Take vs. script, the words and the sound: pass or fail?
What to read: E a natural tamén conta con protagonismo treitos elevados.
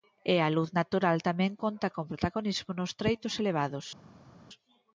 fail